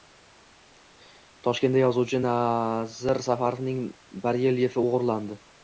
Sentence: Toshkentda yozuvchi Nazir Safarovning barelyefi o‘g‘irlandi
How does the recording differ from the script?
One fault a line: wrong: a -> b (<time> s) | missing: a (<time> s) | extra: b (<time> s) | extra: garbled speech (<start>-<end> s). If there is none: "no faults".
no faults